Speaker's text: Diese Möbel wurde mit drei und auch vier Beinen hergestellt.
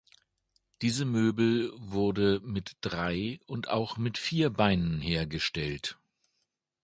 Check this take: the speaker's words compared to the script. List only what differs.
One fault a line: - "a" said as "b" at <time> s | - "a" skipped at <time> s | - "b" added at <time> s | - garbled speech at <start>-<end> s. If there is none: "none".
- "mit" added at 4.0 s